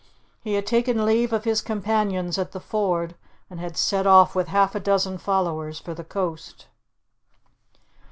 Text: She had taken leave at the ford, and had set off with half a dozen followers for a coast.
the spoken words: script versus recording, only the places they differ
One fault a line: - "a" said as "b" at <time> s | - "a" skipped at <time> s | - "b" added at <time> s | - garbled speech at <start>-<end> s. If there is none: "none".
- "She" said as "He" at 0.4 s
- "of his companions" added at 1.3 s
- "a" said as "the" at 5.9 s